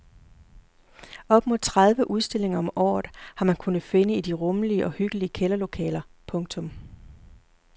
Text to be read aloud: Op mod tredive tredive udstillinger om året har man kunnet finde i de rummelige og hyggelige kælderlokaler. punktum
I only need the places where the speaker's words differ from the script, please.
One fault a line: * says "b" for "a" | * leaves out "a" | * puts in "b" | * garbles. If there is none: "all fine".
* leaves out "tredive"